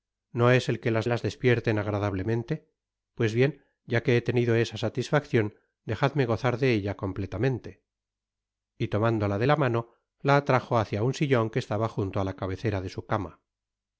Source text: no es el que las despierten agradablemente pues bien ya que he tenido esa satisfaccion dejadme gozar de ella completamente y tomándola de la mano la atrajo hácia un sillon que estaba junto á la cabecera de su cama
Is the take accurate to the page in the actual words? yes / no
no